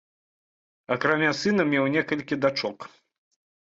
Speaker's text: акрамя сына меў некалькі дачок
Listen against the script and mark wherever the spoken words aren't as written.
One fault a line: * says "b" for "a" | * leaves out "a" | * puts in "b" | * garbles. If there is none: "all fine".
all fine